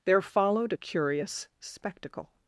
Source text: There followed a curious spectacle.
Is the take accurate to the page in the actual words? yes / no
yes